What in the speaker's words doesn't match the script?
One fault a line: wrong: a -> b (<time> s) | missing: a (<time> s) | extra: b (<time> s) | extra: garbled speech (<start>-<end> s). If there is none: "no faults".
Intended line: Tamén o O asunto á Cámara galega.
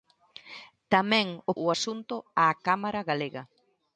no faults